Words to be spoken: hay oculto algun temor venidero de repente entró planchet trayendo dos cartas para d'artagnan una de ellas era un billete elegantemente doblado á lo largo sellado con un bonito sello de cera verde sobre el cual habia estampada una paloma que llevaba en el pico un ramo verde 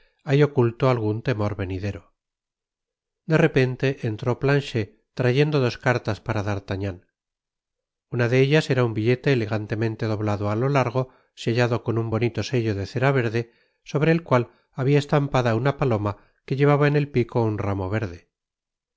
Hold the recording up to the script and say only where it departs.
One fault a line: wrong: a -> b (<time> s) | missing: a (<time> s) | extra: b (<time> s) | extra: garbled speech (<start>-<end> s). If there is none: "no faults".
no faults